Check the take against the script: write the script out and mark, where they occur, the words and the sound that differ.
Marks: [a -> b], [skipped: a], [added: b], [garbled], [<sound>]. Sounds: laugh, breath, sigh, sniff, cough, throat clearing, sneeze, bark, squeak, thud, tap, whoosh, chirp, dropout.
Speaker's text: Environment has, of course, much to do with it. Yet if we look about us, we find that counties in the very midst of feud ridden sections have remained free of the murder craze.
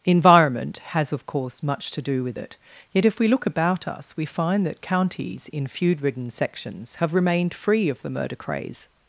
Environment has, of course, much to do with it. Yet if we look about us, we find that counties in [skipped: the very midst of] feud ridden sections have remained free of the murder craze.